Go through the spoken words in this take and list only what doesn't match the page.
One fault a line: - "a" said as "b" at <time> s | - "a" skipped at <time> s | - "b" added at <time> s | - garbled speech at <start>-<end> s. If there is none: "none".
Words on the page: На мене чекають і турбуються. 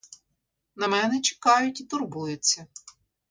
none